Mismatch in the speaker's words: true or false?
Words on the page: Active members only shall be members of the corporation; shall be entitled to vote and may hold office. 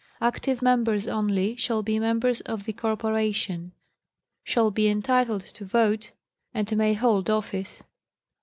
false